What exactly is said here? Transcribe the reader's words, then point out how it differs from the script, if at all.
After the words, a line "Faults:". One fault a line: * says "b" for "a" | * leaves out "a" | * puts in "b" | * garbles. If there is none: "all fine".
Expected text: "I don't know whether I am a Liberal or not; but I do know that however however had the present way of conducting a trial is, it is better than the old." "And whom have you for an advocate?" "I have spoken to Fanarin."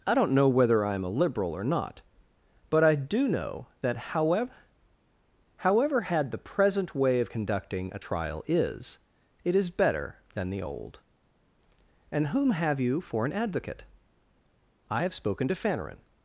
"I don't know whether I am a Liberal or not; but I do know that however however had the present way of conducting a trial is, it is better than the old." "And whom have you for an advocate?" "I have spoken to Fanarin."
Faults:
all fine